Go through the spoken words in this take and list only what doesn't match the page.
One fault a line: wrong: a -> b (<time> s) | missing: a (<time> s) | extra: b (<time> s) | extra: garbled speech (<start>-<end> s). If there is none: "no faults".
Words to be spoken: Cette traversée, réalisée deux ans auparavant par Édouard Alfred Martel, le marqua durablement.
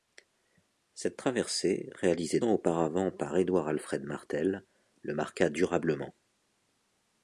missing: deux (2.4 s)